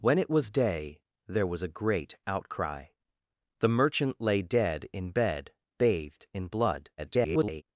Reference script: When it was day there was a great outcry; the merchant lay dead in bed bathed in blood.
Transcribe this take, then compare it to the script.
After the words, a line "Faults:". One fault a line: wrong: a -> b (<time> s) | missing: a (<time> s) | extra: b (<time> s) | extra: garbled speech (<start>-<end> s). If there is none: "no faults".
When it was day there was a great outcry; the merchant lay dead in bed bathed in blood. [garbled]
Faults:
extra: garbled speech (7.0-7.6 s)